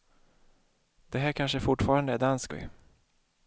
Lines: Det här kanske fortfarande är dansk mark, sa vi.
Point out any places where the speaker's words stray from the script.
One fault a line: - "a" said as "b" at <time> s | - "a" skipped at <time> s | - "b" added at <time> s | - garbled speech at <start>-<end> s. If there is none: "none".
- "mark sa" skipped at 2.5 s